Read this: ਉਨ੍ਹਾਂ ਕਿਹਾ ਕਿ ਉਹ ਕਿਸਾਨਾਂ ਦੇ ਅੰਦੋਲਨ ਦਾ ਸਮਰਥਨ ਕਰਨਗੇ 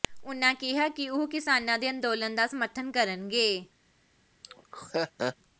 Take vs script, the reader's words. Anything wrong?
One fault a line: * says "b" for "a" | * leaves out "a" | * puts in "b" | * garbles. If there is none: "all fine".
all fine